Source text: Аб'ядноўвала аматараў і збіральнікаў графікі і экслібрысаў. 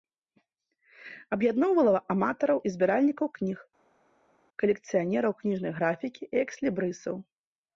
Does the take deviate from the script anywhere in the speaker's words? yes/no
yes